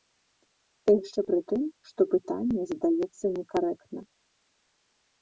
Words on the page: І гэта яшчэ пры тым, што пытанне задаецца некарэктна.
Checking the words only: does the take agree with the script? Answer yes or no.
no